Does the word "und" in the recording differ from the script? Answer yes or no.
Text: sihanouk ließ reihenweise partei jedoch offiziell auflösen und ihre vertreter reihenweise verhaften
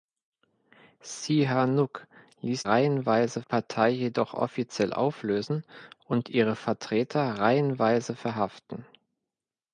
no